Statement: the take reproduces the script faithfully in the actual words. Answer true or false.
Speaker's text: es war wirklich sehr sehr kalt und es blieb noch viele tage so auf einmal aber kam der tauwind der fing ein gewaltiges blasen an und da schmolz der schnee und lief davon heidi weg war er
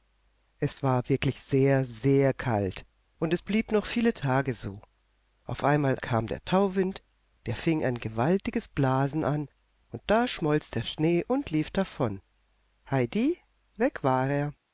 false